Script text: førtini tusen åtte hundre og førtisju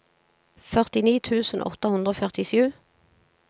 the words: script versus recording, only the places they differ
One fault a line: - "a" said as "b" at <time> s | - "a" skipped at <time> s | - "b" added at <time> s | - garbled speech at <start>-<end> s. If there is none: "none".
none